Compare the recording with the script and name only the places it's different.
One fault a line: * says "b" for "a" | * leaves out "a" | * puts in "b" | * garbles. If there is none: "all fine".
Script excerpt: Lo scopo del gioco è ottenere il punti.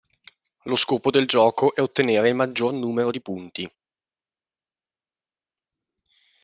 * puts in "maggior numero di"